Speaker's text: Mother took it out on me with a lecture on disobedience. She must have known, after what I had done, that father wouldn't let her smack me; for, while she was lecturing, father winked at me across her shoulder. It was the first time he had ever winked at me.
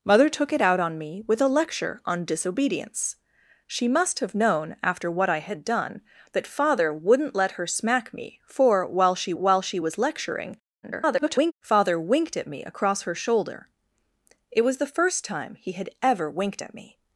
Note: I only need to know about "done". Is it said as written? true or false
true